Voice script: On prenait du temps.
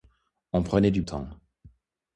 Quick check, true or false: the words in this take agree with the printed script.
true